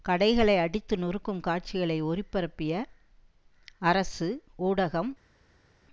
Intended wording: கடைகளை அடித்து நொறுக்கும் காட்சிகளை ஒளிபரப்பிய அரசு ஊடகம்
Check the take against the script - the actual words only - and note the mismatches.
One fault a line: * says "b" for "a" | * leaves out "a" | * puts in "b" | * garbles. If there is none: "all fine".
all fine